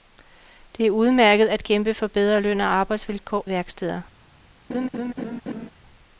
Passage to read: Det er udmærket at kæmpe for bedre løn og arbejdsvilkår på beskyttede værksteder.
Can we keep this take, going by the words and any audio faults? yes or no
no